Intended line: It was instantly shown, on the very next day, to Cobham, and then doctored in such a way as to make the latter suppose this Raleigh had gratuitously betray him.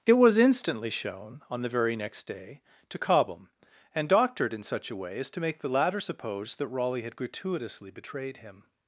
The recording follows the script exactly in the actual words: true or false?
false